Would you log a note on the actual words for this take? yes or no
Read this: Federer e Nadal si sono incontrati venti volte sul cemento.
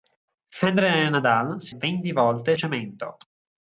yes